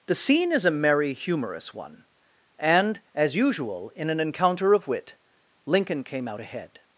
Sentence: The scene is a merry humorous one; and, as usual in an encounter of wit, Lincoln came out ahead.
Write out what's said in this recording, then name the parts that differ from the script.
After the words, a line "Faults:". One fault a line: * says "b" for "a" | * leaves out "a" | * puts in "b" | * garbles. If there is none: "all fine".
The scene is a merry humorous one; and, as usual in an encounter of wit, Lincoln came out ahead.
Faults:
all fine